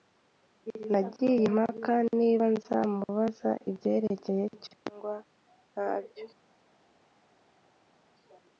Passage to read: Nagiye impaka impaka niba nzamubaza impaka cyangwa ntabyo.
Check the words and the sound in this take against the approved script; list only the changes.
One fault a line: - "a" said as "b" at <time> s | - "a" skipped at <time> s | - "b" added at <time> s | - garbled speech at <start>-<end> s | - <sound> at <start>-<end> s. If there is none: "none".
- "impaka" skipped at 1.9 s
- "impaka" said as "ibyerekeye" at 3.7 s